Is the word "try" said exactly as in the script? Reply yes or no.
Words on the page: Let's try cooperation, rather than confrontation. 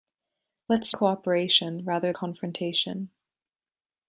no